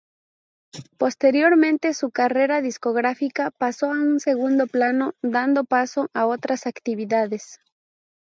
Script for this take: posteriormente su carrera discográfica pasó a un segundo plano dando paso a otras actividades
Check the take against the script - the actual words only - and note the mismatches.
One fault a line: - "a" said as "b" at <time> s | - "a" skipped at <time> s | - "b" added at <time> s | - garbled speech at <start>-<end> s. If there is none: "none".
none